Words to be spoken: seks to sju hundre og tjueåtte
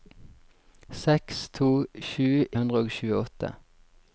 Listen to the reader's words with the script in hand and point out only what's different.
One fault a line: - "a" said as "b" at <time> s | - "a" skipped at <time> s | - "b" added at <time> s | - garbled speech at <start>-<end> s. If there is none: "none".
none